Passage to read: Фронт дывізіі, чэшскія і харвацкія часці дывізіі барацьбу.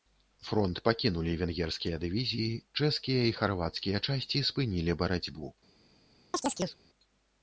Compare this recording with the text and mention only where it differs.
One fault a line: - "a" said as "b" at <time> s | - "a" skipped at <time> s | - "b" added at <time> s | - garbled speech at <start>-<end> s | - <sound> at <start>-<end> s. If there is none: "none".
- "пакінулі венгерскія" added at 0.9 s
- "дывізіі" said as "спынілі" at 4.5 s
- chirp at 6.3-6.8 s